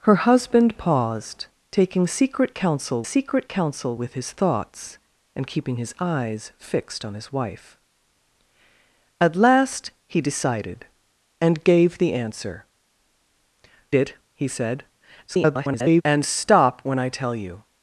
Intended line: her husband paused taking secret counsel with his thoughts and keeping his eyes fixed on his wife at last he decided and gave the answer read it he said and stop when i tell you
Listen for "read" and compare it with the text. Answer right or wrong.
wrong